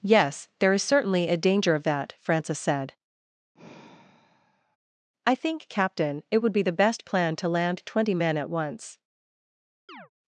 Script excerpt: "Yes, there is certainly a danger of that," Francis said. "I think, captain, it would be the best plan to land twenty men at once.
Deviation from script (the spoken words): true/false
false